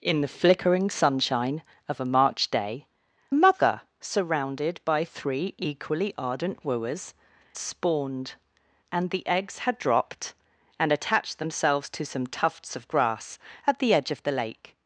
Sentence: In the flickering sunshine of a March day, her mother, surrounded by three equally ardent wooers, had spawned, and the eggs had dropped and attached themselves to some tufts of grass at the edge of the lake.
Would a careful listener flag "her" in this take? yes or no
yes